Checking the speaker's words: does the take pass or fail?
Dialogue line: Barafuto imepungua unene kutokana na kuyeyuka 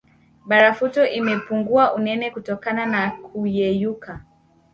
pass